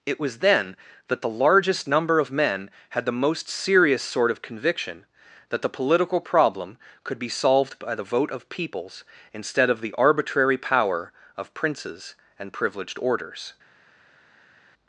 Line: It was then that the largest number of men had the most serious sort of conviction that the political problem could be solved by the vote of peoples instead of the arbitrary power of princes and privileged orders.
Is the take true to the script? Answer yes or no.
yes